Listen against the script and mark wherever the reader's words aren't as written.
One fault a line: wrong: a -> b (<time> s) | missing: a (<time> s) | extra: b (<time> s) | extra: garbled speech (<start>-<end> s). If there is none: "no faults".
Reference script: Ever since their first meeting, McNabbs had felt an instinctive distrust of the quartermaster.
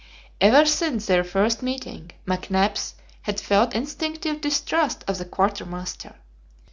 missing: an (3.8 s)